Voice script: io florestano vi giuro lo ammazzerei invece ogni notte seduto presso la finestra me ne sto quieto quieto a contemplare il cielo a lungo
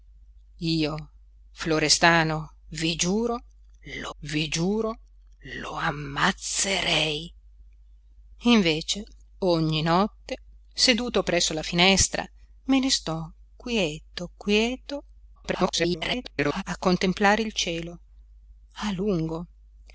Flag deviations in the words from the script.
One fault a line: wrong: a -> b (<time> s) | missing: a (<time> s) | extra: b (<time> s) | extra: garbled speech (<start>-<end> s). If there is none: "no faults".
extra: vi giuro lo (4.2 s)
extra: garbled speech (15.4-16.6 s)